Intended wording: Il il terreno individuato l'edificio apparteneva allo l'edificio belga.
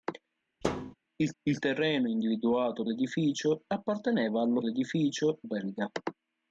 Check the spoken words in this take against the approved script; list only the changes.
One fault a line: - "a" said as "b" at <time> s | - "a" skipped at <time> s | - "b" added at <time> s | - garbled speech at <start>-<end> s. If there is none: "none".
none